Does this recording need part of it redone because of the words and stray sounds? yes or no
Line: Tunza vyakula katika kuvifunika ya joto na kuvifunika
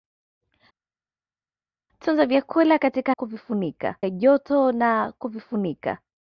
no